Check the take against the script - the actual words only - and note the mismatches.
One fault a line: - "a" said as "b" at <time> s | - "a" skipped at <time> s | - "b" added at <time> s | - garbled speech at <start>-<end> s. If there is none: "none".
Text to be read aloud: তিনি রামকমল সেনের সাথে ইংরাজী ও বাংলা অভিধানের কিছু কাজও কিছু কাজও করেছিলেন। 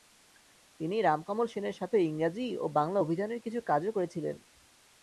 - "কিছু কাজও" skipped at 3.9 s